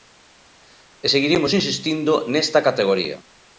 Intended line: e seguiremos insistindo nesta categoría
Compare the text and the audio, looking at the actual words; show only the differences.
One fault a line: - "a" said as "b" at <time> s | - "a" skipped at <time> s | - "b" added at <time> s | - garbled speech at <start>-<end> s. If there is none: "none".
none